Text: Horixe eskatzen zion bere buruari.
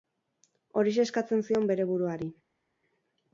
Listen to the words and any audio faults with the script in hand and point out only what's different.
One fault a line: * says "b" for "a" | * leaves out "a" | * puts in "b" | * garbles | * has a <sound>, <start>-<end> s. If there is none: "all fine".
all fine